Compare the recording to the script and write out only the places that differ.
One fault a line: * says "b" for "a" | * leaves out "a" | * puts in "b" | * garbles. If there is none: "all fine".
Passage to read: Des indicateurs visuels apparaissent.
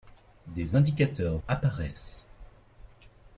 * leaves out "visuels"